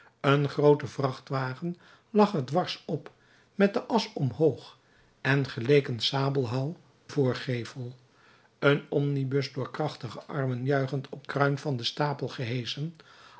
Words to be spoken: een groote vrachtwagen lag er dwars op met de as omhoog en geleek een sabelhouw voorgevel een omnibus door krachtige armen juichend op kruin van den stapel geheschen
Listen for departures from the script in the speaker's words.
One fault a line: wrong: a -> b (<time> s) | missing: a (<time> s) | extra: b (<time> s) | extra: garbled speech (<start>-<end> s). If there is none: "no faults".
no faults